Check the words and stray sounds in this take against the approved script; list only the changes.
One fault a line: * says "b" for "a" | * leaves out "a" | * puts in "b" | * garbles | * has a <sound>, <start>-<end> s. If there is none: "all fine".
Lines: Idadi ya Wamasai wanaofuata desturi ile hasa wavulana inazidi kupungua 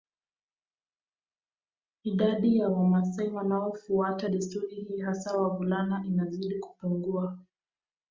* says "hii" for "ile"